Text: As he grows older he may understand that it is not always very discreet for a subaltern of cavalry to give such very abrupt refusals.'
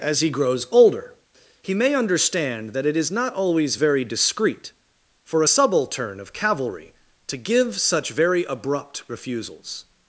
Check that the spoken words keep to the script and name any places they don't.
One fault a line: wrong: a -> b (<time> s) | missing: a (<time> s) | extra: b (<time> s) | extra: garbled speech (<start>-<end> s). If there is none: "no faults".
no faults